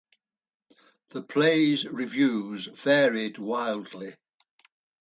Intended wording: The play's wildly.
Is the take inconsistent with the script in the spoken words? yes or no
yes